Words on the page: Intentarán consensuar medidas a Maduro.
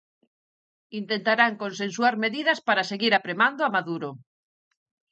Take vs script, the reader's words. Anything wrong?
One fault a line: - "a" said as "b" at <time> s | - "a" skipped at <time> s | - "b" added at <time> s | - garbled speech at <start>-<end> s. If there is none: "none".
- "para seguir apremando" added at 2.7 s